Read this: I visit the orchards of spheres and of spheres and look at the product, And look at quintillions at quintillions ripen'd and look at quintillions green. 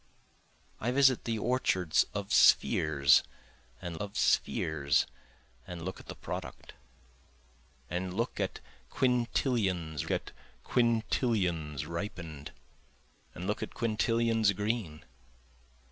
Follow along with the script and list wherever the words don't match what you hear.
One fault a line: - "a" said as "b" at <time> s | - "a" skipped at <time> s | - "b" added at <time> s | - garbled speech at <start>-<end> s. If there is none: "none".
none